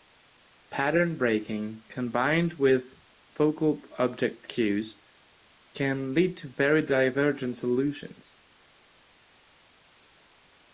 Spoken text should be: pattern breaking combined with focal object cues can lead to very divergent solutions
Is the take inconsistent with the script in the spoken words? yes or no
no